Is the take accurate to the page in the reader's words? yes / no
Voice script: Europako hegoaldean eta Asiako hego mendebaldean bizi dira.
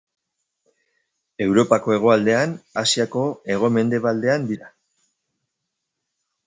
no